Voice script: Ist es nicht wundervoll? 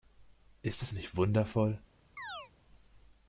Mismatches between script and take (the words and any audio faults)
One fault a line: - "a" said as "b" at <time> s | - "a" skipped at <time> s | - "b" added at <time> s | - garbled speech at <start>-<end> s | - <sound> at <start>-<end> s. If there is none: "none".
- chirp at 2.2-2.5 s